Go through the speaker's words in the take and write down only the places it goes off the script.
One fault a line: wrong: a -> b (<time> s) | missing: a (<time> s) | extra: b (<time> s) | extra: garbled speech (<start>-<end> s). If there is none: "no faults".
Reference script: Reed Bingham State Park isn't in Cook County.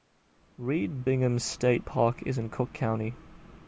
wrong: isn't -> is (2.2 s)